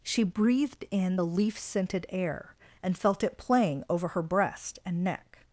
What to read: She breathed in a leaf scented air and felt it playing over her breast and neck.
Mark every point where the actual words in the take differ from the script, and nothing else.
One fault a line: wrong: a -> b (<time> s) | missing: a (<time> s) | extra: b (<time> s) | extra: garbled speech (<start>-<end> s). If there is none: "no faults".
wrong: a -> the (1.1 s)